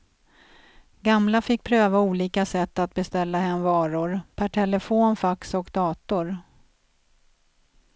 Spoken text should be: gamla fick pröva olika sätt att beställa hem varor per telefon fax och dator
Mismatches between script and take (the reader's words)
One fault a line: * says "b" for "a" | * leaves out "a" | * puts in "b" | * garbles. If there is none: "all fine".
all fine